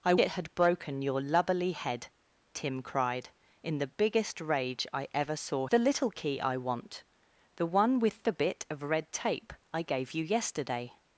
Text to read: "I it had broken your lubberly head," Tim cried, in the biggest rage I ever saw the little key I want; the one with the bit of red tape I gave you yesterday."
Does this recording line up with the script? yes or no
yes